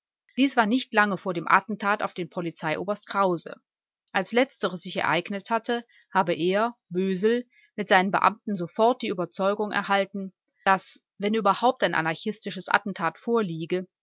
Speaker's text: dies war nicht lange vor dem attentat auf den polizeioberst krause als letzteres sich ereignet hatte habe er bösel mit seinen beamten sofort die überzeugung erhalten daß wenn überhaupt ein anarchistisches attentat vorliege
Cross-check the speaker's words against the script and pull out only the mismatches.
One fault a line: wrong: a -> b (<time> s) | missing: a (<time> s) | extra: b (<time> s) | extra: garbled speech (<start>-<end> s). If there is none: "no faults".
no faults